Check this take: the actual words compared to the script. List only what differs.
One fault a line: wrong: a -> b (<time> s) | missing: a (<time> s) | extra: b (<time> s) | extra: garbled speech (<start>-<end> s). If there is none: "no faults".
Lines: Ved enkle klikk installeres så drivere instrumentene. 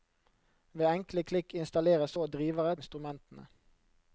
no faults